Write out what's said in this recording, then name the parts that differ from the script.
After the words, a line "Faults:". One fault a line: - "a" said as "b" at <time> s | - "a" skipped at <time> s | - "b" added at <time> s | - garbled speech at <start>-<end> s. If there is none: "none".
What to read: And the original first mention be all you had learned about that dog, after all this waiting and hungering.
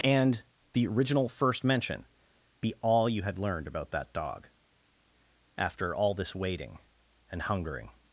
And the original first mention be all you had learned about that dog, after all this waiting and hungering.
Faults:
none